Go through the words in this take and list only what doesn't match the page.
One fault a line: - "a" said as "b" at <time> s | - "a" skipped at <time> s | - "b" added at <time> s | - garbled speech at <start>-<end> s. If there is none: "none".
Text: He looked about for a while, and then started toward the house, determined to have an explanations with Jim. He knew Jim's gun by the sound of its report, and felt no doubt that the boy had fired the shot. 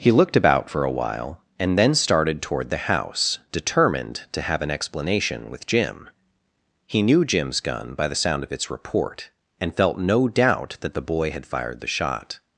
- "explanations" said as "explanation" at 4.7 s